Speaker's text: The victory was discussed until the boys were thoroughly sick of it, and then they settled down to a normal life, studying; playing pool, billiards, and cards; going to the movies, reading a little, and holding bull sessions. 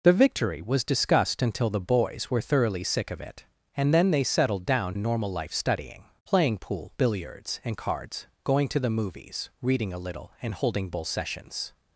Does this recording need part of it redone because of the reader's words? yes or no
yes